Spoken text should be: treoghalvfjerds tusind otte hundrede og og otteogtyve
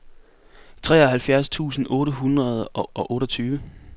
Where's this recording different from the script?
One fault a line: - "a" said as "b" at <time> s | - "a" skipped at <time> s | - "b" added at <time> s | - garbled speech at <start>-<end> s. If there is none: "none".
none